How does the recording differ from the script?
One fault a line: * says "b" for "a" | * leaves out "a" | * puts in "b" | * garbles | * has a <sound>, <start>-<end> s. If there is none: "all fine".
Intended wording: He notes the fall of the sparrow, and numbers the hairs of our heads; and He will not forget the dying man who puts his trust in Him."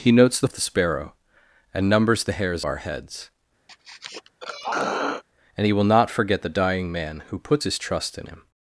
* leaves out "fall"
* leaves out "of"
* has a throat clearing, 3.7-5.2 s